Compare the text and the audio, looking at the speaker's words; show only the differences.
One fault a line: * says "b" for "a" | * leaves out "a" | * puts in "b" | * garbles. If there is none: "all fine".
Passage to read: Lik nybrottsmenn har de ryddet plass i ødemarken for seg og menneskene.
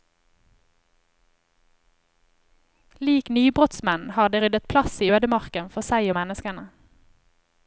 all fine